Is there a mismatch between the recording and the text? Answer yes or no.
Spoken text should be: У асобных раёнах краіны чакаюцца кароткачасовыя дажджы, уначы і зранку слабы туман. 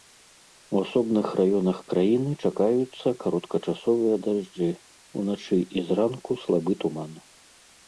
no